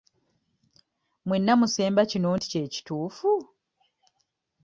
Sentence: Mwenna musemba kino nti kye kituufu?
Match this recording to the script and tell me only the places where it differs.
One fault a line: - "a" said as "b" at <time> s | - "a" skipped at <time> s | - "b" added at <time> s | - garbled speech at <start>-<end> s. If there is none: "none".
none